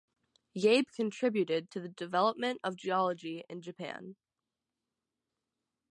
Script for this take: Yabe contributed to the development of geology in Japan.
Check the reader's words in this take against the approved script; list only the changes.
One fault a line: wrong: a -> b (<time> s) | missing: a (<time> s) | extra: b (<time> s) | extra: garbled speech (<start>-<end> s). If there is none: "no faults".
no faults